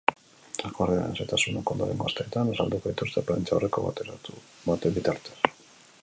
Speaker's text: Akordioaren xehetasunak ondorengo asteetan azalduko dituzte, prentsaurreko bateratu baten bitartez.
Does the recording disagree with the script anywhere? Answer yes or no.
no